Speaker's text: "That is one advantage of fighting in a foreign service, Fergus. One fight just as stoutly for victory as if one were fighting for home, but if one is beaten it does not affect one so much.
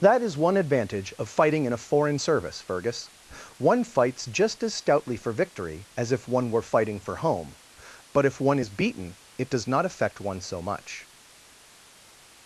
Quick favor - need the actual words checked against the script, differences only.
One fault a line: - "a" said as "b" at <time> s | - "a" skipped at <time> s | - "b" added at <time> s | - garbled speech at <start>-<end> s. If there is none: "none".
- "fight" said as "fights" at 3.8 s